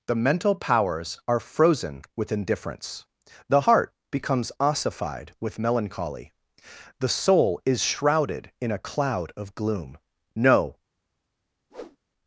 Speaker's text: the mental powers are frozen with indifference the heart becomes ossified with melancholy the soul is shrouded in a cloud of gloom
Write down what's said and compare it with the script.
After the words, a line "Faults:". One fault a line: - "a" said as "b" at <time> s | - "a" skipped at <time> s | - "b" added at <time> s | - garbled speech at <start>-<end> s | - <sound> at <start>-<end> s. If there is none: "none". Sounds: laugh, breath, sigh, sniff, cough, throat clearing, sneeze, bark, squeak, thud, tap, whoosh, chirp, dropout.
the mental powers are frozen with indifference the heart becomes ossified with melancholy the soul is shrouded in a cloud of gloom no
Faults:
- "no" added at 10.4 s
- whoosh at 11.7-12.0 s